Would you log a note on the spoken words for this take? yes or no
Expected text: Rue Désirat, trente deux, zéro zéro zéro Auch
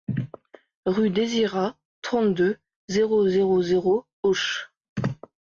no